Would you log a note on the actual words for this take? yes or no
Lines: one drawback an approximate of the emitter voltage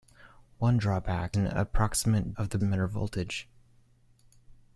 no